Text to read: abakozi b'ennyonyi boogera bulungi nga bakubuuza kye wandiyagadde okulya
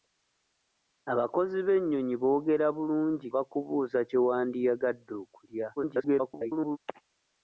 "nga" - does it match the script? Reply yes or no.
no